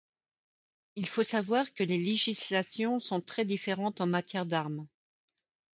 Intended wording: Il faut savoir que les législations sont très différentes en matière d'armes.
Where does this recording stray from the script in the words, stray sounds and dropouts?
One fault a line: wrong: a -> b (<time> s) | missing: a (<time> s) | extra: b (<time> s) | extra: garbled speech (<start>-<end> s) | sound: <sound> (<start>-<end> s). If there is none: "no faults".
no faults